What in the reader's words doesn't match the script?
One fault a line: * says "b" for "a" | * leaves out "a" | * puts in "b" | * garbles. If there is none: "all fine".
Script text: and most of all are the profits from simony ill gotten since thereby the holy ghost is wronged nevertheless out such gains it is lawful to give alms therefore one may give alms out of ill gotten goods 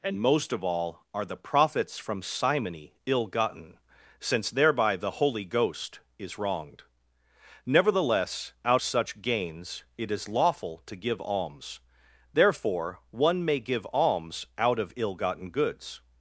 all fine